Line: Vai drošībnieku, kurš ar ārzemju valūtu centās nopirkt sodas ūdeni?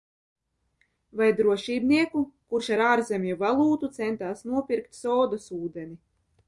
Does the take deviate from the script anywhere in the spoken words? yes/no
no